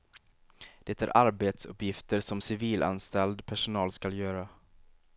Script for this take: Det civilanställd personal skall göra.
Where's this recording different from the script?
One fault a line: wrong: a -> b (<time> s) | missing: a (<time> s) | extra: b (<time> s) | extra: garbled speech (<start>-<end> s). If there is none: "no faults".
extra: är arbetsuppgifter som (1.0 s)